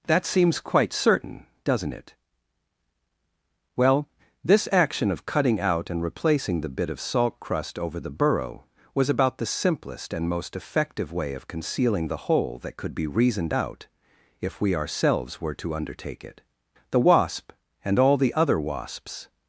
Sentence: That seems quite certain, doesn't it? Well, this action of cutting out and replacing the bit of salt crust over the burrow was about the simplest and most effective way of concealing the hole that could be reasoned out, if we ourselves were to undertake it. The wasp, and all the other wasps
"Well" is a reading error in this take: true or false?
false